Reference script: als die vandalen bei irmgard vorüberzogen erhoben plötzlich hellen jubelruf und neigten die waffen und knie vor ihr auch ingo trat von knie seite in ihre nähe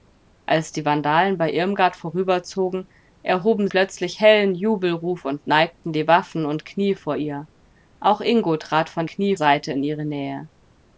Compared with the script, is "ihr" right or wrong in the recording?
right